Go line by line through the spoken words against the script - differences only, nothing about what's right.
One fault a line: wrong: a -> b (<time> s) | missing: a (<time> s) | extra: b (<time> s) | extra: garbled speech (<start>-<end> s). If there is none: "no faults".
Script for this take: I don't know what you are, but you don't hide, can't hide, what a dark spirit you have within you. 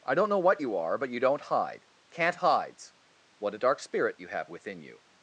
wrong: hide -> hides (2.4 s)